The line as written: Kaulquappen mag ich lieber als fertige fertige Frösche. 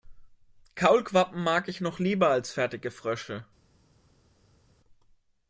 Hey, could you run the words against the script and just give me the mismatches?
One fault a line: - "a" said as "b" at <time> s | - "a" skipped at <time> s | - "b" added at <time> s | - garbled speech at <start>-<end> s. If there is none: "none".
- "noch" added at 1.8 s
- "fertige" skipped at 2.9 s